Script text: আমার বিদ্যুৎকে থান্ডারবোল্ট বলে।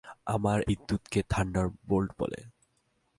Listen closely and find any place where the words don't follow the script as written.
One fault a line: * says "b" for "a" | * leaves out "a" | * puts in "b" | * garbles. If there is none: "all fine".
all fine